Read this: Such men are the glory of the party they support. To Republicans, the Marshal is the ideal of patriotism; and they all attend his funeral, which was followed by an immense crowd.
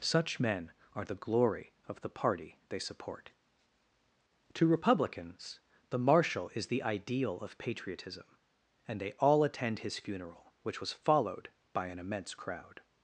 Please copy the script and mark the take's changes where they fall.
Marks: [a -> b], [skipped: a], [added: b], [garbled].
Such men are the glory of the party they support. To Republicans, the Marshal is the ideal of patriotism; and they all attend his funeral, which was followed by an immense crowd.